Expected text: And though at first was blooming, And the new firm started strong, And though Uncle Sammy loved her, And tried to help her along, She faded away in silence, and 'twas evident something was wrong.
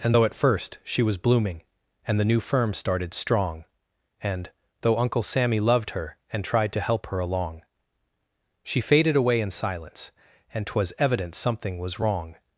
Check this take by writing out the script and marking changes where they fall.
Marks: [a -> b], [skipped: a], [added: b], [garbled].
And though at first [added: she] was blooming, And the new firm started strong, And though Uncle Sammy loved her, And tried to help her along, She faded away in silence, and 'twas evident something was wrong.